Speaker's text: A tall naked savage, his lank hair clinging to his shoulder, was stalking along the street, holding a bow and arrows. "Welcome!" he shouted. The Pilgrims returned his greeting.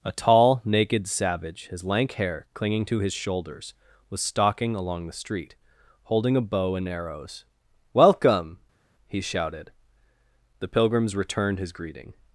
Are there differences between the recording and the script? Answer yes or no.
yes